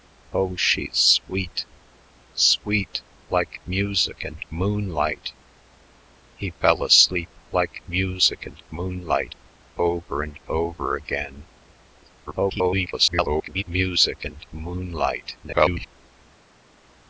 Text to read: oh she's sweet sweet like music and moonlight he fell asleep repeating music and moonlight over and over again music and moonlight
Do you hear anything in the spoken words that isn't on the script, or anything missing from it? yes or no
yes